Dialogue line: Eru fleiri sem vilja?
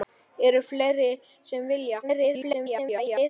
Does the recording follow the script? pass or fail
fail